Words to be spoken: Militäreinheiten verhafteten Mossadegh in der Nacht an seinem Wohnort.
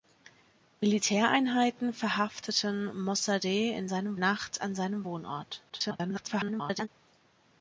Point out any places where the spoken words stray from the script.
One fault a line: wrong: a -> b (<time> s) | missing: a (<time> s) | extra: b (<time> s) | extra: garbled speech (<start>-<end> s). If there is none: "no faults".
wrong: der -> seinem (3.9 s)
extra: garbled speech (5.7-6.9 s)